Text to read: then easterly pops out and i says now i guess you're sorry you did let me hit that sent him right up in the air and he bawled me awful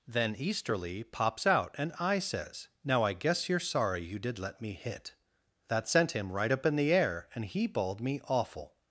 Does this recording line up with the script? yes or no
yes